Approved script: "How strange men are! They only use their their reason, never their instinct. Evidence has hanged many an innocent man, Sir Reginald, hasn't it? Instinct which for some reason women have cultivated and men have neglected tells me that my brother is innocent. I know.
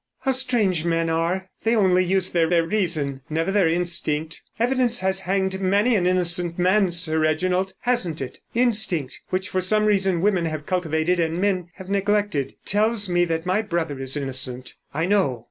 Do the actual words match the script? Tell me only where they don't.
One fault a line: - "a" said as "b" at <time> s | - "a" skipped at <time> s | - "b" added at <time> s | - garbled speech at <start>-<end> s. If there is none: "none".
none